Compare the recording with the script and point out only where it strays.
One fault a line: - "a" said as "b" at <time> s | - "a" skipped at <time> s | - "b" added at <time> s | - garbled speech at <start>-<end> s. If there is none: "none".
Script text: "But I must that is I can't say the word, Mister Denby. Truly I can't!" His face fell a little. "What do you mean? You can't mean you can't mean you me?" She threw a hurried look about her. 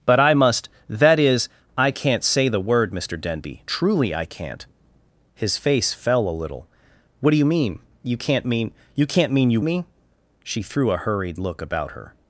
none